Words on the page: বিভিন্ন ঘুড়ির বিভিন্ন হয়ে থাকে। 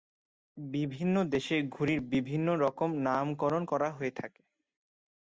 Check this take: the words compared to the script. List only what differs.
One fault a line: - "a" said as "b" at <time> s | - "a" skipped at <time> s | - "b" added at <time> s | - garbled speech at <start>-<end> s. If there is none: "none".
- "দেশে" added at 1.3 s
- "রকম নামকরণ করা" added at 2.6 s